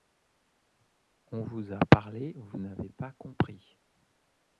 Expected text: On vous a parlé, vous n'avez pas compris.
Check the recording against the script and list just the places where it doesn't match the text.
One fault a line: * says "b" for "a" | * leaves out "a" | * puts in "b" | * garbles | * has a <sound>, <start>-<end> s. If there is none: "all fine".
all fine